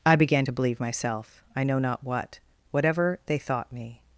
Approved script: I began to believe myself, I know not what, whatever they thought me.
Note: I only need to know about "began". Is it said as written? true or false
true